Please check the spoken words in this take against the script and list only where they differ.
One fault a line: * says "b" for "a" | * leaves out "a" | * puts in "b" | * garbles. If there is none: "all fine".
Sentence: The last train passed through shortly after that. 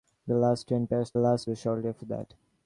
* says "last" for "through"